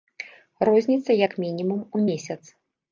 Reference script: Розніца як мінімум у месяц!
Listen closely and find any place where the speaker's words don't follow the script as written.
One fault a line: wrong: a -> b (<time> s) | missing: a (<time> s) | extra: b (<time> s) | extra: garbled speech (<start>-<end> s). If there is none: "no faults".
no faults